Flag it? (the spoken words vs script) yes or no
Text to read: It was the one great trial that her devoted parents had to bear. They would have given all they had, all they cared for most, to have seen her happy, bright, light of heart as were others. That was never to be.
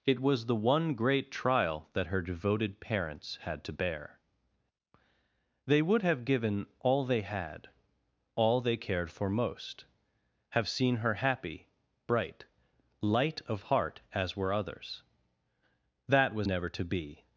yes